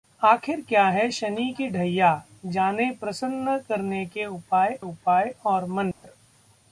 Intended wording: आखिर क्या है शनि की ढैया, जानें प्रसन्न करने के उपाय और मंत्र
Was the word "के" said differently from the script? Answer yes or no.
no